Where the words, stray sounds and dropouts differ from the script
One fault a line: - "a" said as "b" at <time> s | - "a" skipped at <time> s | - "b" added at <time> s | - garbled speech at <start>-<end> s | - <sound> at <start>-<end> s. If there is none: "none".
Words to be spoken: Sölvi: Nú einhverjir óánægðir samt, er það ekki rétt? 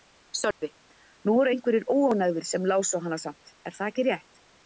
- dropout at 0.5-0.6 s
- "voru" added at 1.4 s
- "sem lásu hana" added at 2.5 s